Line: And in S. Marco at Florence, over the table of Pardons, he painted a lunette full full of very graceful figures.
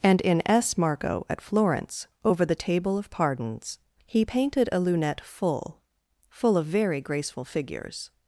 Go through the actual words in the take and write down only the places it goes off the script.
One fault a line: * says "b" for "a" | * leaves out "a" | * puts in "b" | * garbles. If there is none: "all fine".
all fine